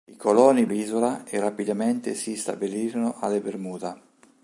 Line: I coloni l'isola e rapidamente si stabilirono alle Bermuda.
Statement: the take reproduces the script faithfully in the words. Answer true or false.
true